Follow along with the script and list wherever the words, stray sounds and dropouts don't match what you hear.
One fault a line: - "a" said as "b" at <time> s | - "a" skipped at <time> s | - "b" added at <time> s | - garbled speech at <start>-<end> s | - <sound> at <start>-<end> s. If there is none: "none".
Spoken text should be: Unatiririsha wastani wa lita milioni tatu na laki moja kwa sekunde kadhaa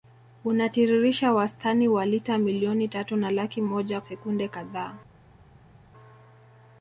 - "kwa" skipped at 4.0 s